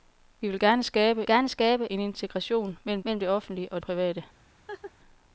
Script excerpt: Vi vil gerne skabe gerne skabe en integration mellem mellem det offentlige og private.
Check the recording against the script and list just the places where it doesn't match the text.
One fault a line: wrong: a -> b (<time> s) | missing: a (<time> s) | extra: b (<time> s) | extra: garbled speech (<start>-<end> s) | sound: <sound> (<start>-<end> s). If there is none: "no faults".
sound: laugh (4.7-4.9 s)